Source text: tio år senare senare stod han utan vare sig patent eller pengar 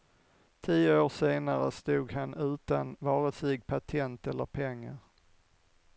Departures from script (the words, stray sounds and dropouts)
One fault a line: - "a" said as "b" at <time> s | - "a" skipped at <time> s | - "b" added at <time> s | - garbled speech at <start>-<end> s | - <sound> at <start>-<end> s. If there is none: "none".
- "senare" skipped at 1.7 s